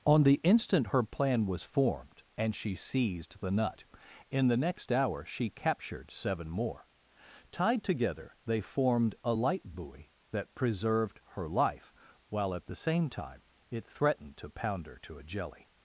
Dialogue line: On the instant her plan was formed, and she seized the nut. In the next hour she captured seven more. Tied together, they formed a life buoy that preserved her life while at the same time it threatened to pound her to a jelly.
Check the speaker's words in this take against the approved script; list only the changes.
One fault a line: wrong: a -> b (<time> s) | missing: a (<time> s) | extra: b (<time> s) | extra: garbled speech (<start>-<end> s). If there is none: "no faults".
wrong: life -> light (9.3 s)